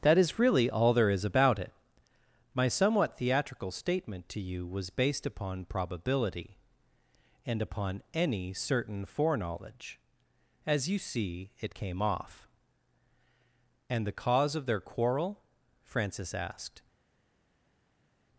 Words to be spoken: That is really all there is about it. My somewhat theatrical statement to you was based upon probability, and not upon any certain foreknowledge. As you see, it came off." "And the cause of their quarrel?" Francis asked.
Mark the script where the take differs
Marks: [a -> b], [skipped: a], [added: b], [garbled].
That is really all there is about it. My somewhat theatrical statement to you was based upon probability, and [skipped: not] upon any certain foreknowledge. As you see, it came off." "And the cause of their quarrel?" Francis asked.